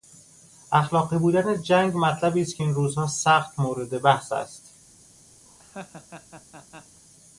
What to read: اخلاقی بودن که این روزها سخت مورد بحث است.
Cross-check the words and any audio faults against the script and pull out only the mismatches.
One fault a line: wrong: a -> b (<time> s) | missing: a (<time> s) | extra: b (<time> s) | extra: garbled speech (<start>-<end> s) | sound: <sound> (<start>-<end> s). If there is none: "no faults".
extra: جنگ مطلبی است (1.6 s)
sound: laugh (5.5-7.0 s)